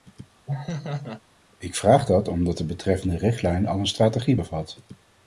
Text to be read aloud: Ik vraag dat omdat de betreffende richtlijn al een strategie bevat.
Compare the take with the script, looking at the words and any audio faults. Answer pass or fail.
fail